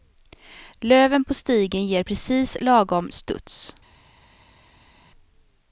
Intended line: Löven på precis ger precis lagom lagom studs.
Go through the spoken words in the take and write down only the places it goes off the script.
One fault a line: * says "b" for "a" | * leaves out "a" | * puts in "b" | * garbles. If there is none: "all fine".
* says "stigen" for "precis"
* leaves out "lagom"